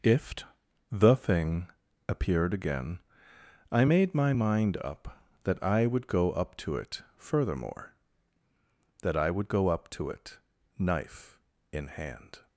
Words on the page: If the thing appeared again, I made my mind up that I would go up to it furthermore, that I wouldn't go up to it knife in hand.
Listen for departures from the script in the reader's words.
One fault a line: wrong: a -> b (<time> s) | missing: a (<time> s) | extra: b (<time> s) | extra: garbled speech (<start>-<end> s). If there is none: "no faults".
wrong: wouldn't -> would (9.3 s)